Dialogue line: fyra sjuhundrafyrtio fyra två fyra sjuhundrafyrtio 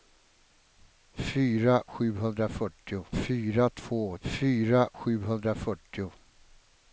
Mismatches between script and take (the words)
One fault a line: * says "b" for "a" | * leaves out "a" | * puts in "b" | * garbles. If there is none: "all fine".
all fine